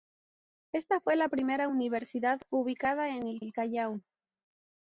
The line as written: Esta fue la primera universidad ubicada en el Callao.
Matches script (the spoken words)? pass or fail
fail